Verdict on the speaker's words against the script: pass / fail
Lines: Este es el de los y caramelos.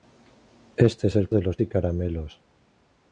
pass